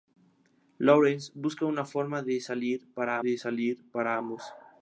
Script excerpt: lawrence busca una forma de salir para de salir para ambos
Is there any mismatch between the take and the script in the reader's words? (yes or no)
no